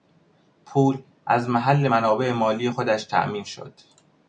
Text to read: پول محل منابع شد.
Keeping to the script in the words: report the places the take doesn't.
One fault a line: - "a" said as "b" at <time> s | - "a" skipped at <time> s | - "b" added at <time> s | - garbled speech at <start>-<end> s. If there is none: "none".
- "از" added at 1.2 s
- "مالی خودش تامین" added at 2.3 s